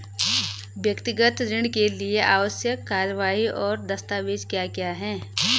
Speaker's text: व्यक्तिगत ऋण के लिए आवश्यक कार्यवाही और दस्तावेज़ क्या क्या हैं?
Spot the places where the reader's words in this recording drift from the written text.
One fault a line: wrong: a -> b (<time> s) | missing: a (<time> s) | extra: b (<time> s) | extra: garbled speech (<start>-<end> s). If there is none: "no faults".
no faults